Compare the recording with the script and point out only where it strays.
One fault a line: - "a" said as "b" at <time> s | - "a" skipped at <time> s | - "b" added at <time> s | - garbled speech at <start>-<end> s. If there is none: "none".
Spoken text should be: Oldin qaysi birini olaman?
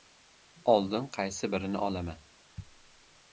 none